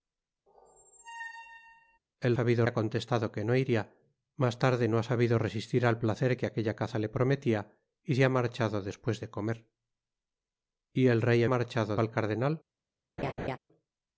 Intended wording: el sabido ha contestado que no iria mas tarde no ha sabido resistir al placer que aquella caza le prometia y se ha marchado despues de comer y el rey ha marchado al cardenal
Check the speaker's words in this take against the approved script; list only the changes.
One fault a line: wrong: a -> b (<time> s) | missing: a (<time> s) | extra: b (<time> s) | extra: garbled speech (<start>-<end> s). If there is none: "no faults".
no faults